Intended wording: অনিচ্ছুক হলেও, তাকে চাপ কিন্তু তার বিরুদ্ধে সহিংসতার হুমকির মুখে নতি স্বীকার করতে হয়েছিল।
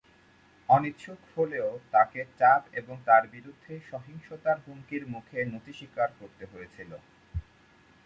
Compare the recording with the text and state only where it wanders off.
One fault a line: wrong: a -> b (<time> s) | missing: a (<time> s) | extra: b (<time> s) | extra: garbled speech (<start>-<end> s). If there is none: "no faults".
wrong: কিন্তু -> এবং (2.7 s)